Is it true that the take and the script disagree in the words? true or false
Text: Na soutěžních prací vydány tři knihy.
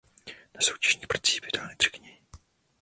false